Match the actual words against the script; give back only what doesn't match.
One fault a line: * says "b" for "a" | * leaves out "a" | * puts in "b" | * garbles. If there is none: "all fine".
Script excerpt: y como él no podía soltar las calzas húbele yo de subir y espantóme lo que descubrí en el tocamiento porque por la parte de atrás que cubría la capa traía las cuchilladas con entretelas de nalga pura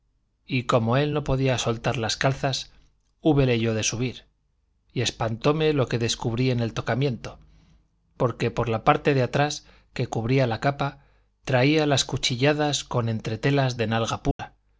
all fine